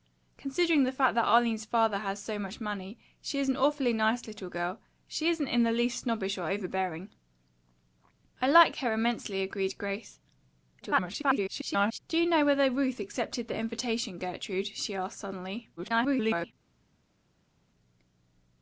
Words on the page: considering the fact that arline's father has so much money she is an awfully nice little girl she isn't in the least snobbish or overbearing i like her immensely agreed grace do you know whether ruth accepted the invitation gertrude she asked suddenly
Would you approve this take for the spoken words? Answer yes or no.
no